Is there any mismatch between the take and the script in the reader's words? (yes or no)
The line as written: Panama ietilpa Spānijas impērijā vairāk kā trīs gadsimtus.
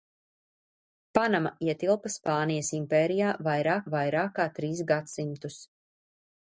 yes